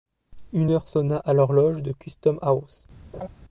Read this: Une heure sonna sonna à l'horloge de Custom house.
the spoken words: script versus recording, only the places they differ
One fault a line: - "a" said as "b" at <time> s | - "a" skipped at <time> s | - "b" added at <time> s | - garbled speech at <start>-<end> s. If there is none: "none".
- "sonna" skipped at 1.2 s